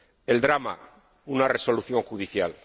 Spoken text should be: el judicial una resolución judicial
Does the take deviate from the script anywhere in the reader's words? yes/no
yes